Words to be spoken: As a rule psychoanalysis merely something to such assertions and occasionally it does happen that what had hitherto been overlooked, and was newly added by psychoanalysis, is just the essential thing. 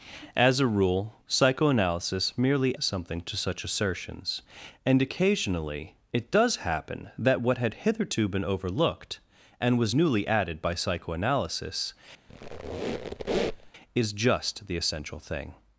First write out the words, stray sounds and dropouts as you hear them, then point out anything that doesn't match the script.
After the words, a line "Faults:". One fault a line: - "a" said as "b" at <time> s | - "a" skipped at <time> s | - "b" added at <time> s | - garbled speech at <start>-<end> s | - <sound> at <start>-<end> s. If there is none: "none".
As a rule psychoanalysis merely something to such assertions and occasionally it does happen that what had hitherto been overlooked, and was newly added by psychoanalysis, is just the essential thing.
Faults:
- squeak at 12.3-13.7 s